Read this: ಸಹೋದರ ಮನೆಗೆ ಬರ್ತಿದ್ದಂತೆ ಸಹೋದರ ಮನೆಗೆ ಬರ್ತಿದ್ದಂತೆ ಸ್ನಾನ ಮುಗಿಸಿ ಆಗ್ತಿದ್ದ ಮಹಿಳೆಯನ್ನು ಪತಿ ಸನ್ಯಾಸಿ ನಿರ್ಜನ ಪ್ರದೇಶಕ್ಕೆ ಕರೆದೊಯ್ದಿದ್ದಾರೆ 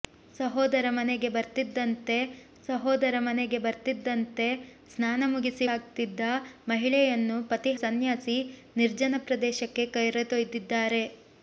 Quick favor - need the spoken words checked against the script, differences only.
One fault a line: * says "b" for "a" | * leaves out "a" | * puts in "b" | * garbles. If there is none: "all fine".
all fine